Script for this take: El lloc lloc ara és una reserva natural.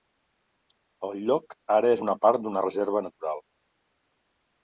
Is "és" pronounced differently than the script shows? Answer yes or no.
no